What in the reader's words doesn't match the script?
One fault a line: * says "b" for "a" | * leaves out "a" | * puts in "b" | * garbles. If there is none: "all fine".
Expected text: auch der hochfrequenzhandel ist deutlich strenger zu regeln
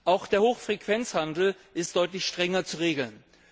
all fine